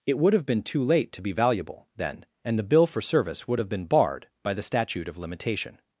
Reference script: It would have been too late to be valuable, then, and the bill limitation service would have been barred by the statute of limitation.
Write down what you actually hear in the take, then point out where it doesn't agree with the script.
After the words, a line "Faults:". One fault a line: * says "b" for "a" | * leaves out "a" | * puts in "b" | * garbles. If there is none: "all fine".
It would have been too late to be valuable, then, and the bill for service would have been barred by the statute of limitation.
Faults:
* says "for" for "limitation"